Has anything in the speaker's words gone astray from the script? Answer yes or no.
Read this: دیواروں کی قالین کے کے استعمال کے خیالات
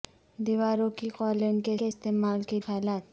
no